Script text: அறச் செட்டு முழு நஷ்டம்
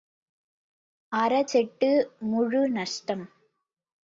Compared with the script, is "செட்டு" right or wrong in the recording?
right